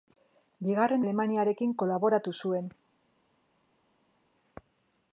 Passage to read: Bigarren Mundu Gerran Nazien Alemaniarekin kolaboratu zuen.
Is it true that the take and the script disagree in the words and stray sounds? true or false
true